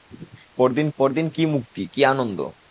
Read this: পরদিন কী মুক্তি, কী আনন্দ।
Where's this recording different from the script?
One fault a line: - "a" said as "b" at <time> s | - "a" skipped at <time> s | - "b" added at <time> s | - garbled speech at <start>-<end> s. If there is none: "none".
- "পরদিন" added at 1.0 s